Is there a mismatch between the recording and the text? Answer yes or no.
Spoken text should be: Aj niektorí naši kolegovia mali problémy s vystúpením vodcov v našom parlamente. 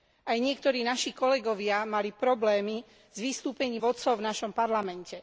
no